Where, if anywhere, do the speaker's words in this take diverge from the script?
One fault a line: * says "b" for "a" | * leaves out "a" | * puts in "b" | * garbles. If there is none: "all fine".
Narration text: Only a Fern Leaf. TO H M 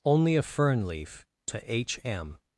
all fine